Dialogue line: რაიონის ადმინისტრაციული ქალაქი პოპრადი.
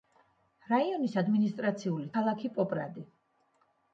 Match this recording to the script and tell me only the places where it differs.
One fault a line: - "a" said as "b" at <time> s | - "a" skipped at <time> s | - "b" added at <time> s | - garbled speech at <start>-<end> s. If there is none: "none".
none